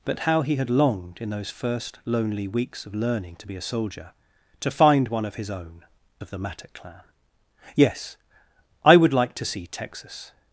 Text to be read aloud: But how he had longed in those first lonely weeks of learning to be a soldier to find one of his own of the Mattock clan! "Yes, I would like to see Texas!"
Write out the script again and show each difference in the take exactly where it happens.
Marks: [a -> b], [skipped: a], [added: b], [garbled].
But how he had longed in those first lonely weeks of learning to be a soldier to find one of his own of the Mattock clan! "Yes, I would like to see Texas!"